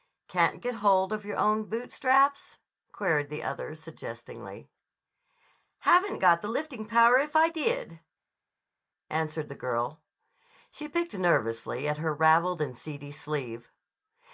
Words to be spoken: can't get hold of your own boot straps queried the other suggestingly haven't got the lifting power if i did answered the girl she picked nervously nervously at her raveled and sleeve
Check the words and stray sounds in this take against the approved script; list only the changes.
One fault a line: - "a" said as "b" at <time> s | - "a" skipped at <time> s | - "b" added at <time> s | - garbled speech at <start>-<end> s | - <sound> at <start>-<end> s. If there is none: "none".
- "nervously" skipped at 11.9 s
- "seedy" added at 12.8 s